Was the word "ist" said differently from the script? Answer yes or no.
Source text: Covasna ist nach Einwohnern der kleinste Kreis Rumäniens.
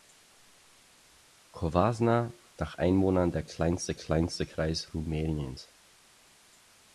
yes